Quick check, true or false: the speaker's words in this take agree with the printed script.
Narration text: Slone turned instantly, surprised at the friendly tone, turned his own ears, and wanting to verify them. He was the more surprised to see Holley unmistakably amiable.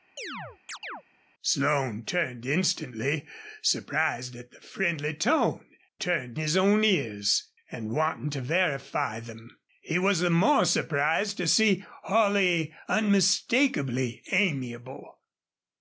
true